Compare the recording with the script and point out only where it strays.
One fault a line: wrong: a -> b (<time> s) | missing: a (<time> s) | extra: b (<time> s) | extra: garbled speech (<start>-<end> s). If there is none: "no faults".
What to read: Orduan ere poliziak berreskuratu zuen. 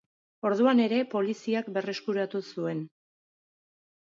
no faults